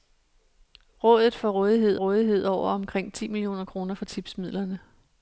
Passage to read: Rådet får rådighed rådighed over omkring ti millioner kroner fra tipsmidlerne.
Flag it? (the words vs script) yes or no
no